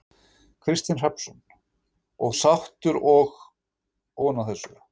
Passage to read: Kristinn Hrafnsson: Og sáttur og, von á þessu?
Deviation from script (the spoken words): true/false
false